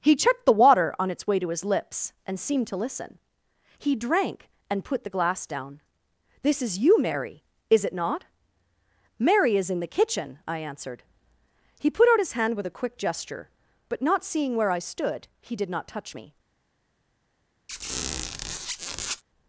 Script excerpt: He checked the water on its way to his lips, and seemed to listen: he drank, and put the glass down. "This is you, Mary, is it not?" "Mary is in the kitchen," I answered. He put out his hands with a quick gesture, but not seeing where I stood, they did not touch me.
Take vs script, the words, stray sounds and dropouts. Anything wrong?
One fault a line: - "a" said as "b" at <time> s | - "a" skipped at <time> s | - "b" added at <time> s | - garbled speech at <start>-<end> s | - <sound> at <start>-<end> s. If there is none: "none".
- "hands" said as "hand" at 12.3 s
- "they" said as "he" at 15.4 s
- squeak at 17.7-19.2 s